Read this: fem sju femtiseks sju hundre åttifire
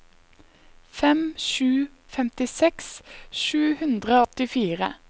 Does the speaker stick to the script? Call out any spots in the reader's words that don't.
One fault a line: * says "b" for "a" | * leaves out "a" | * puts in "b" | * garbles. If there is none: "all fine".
all fine